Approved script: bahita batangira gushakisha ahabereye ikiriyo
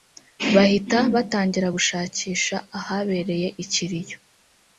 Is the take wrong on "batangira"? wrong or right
right